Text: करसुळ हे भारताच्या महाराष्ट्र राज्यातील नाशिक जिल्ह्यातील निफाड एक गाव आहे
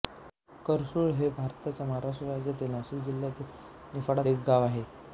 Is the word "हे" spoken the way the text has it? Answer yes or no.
yes